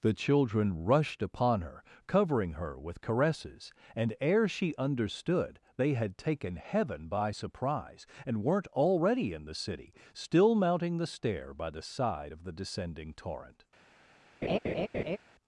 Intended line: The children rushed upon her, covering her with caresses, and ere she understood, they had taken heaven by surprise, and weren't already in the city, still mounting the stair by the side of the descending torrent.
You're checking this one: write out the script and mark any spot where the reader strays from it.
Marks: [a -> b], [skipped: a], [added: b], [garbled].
The children rushed upon her, covering her with caresses, and ere she understood, they had taken heaven by surprise, and weren't already in the city, still mounting the stair by the side of the descending torrent.